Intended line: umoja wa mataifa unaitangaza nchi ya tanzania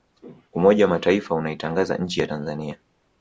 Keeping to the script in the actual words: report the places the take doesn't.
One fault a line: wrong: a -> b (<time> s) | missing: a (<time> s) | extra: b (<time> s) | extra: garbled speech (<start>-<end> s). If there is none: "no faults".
no faults